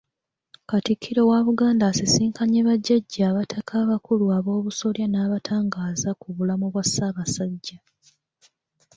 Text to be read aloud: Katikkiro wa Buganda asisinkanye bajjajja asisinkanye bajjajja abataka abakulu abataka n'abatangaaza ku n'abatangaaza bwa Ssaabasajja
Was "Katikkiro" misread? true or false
false